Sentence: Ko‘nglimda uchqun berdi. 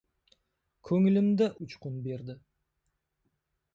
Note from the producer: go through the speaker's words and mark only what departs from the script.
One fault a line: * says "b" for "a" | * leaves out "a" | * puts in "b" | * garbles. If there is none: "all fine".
all fine